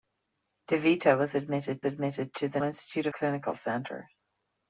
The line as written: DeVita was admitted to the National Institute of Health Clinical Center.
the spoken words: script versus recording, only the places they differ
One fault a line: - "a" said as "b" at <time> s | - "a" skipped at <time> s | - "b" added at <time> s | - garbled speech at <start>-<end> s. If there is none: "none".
- "admitted" added at 1.9 s
- "National" skipped at 2.6 s
- "Health" skipped at 3.1 s